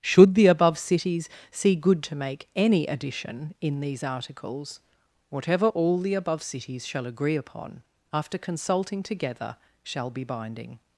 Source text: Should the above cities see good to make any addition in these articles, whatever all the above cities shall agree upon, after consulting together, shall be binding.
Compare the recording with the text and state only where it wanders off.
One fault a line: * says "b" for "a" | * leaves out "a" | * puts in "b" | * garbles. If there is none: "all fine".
all fine